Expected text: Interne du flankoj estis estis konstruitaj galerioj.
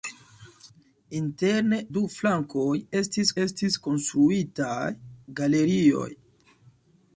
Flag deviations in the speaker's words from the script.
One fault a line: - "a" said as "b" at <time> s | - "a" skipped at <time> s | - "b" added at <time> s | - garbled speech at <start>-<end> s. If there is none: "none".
none